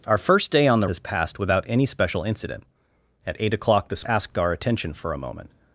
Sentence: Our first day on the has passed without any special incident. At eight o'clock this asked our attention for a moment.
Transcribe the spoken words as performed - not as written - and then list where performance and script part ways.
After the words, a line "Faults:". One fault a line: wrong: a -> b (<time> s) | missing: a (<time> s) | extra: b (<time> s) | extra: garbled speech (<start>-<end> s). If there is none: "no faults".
Our first day on the has passed without any special incident. At eight o'clock this asked our attention for a moment.
Faults:
no faults